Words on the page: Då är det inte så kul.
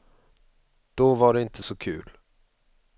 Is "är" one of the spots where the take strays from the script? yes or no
yes